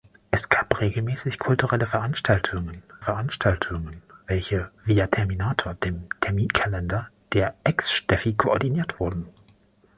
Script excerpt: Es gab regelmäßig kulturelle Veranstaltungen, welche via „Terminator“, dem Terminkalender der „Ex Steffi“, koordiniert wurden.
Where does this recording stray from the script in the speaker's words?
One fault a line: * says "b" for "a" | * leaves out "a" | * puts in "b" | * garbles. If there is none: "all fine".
* puts in "Veranstaltungen"